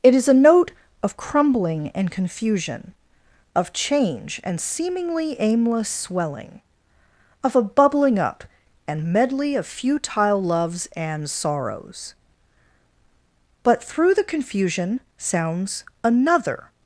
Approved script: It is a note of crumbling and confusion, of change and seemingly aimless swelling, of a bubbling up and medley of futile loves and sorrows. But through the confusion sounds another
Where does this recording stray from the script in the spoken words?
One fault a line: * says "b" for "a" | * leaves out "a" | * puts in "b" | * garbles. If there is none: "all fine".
all fine